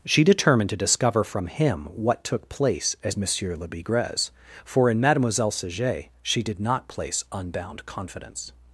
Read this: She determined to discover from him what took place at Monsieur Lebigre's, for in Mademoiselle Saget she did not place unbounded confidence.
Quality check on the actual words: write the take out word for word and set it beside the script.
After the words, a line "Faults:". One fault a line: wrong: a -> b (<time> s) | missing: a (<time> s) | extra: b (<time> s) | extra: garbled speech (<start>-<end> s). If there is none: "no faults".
She determined to discover from him what took place as Monsieur Lebigre's, for in Mademoiselle Saget she did not place unbound confidence.
Faults:
wrong: at -> as (3.0 s)
wrong: unbounded -> unbound (7.3 s)